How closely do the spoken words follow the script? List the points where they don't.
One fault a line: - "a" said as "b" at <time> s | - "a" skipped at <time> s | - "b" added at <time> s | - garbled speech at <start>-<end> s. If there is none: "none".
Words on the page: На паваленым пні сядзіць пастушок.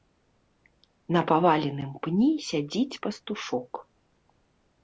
none